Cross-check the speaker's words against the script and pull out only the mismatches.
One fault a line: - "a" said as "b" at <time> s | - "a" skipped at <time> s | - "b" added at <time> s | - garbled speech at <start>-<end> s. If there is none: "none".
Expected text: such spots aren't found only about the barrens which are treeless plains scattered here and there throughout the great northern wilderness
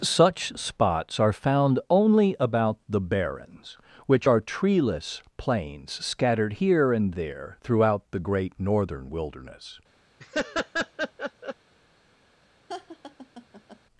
- "aren't" said as "are" at 1.2 s